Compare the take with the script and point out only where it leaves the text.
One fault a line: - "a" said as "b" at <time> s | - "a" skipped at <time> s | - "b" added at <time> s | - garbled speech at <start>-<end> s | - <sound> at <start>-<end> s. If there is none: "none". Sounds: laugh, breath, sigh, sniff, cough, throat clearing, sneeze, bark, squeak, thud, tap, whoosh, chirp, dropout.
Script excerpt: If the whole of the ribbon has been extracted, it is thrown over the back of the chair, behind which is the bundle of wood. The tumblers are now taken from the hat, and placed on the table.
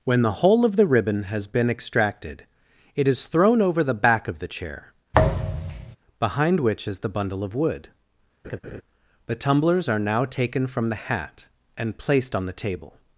- "If" said as "When" at 0.0 s
- thud at 5.1-6.0 s
- laugh at 8.4-8.8 s